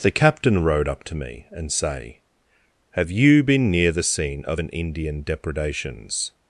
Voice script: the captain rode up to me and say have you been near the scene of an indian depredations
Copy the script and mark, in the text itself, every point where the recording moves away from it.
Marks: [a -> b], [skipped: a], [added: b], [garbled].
the captain rode up to me and say have you been near the scene of an indian depredations